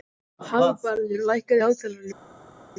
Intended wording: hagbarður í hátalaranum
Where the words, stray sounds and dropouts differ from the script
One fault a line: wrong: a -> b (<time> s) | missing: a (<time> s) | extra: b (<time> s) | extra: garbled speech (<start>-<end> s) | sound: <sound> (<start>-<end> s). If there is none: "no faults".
extra: lækkaðu (1.3 s)